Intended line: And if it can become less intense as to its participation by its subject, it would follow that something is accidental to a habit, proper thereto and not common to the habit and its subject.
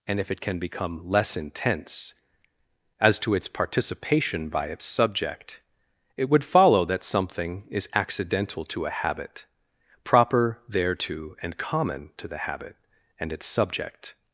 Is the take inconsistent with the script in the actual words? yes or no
yes